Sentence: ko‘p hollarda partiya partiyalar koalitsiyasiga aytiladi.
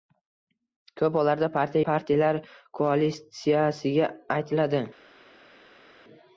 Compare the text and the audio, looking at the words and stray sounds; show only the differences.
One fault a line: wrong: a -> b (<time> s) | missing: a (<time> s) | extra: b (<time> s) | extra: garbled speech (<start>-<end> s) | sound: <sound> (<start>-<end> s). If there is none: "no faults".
no faults